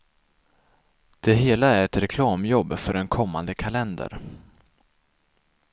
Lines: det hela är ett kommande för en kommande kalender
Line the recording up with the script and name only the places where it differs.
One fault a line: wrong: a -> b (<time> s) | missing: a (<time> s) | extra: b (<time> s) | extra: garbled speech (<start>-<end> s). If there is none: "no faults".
wrong: kommande -> reklamjobb (2.0 s)